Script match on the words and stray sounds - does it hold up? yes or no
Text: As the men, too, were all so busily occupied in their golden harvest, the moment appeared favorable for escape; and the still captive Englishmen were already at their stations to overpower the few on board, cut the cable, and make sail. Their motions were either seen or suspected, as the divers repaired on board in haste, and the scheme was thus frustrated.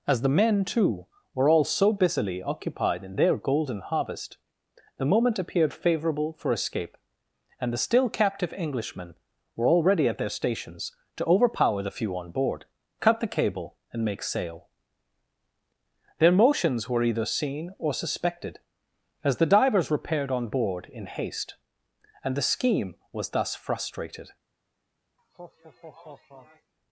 no